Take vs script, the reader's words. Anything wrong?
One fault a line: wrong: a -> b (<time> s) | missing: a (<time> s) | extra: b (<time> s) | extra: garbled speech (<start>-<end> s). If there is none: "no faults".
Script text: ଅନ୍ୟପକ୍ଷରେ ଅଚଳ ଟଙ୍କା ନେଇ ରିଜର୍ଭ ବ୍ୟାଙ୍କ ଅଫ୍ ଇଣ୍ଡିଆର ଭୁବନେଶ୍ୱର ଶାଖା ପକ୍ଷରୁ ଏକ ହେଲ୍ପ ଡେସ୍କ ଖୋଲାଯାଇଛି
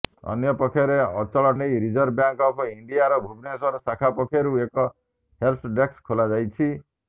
missing: ଟଙ୍କା (1.5 s)